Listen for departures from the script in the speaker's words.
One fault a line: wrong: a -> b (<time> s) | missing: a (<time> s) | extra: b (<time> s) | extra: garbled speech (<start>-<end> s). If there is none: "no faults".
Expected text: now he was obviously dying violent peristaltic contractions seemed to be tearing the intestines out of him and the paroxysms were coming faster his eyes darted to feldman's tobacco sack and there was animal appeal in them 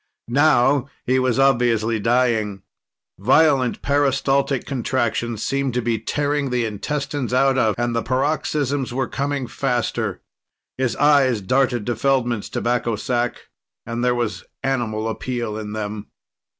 missing: him (7.8 s)